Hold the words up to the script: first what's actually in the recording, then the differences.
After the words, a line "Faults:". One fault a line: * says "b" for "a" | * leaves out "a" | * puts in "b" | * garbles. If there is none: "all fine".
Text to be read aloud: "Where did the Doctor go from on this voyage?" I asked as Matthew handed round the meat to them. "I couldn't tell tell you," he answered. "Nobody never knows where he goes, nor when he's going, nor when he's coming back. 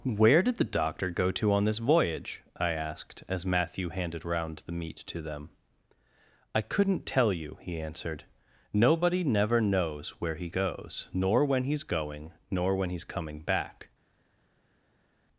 "Where did the Doctor go to on this voyage?" I asked as Matthew handed round the meat to them. "I couldn't tell you," he answered. "Nobody never knows where he goes, nor when he's going, nor when he's coming back.
Faults:
* says "to" for "from"
* leaves out "tell"